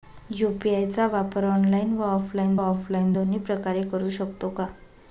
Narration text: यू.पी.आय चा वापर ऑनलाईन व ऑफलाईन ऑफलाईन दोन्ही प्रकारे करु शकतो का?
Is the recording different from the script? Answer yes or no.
no